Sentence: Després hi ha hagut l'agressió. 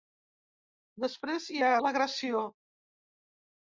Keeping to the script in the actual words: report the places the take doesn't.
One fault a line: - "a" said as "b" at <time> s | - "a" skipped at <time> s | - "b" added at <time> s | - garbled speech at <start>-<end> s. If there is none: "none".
- "hagut" skipped at 1.7 s